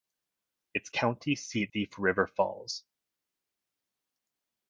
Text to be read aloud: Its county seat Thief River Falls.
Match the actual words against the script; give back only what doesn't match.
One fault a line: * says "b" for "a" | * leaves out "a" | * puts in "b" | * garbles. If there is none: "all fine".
all fine